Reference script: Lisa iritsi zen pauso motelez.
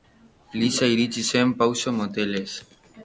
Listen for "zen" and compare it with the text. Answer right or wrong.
right